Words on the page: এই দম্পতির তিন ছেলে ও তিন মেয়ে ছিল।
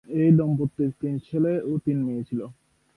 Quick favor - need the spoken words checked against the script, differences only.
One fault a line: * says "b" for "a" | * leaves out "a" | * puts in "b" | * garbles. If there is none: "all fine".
all fine